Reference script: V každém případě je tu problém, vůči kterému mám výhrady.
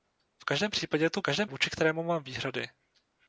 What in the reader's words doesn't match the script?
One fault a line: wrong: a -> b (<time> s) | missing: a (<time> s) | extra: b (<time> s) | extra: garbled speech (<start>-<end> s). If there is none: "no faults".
wrong: problém -> každém (1.2 s)